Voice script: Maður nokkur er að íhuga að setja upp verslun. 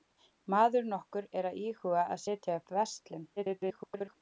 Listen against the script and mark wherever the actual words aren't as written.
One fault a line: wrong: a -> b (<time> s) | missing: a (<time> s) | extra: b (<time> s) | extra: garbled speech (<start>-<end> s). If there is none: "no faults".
extra: garbled speech (3.4-4.2 s)